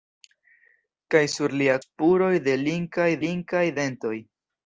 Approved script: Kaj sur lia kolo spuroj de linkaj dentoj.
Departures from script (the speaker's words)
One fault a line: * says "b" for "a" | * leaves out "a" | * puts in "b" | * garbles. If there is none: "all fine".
* leaves out "kolo"
* puts in "linkaj"